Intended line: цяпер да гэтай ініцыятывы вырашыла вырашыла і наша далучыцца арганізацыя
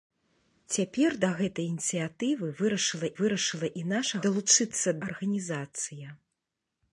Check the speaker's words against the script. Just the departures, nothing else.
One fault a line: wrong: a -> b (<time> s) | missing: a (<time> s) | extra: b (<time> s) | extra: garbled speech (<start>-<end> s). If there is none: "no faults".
no faults